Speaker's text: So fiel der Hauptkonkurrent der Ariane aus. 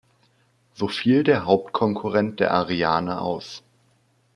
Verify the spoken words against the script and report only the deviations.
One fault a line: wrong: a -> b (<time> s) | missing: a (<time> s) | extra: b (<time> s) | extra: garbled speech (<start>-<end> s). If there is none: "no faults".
no faults